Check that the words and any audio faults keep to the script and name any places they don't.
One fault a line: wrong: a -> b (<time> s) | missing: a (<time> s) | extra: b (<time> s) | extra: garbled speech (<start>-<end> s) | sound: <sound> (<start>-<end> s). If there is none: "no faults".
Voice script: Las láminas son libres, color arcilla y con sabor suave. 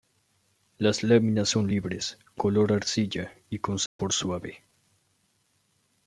sound: dropout (3.9-4.0 s)